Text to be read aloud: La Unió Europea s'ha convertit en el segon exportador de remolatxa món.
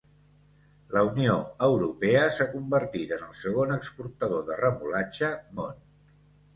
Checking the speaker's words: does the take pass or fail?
pass